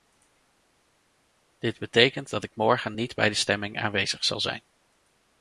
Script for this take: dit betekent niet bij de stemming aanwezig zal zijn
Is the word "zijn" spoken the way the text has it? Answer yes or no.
yes